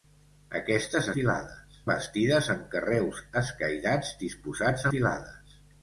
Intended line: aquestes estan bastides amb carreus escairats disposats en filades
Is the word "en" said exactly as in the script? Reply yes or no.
no